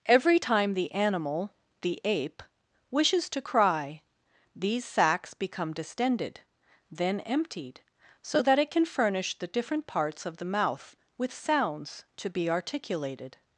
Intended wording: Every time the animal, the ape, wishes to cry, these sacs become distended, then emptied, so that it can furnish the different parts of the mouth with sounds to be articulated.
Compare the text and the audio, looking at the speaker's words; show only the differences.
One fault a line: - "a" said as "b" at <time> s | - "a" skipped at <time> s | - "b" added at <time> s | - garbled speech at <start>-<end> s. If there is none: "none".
none